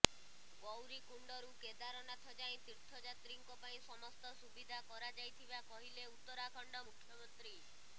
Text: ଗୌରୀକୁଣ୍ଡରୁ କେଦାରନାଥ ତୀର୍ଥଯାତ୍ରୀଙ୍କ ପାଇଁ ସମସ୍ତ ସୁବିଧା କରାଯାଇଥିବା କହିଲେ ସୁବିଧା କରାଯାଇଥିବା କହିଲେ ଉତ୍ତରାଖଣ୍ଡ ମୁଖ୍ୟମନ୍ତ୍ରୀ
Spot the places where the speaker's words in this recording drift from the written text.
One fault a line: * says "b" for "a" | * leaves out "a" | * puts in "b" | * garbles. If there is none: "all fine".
* puts in "ଯାଏଁ"
* leaves out "ସୁବିଧା କରାଯାଇଥିବା କହିଲେ"